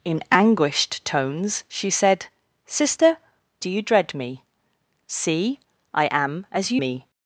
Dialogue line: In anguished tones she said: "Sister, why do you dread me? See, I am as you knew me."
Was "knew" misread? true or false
true